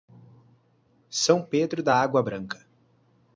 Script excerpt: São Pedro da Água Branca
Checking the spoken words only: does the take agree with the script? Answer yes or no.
yes